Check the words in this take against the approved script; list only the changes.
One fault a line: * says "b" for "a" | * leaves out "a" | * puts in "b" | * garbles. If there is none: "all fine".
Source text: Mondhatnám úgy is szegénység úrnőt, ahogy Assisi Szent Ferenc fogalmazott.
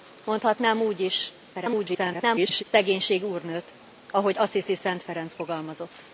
* garbles